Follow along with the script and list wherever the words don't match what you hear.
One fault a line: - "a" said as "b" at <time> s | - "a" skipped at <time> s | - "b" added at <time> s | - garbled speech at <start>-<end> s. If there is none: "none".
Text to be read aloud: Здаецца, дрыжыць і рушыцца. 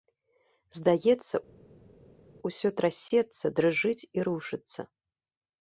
- "усё трасецца" added at 2.5 s